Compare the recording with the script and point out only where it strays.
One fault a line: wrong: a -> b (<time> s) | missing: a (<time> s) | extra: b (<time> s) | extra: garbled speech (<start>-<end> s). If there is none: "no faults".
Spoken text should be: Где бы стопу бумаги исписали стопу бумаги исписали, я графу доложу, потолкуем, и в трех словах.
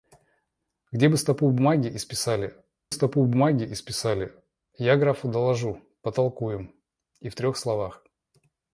no faults